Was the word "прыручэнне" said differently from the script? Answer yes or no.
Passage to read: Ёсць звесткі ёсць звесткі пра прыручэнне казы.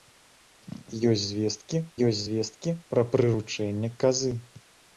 no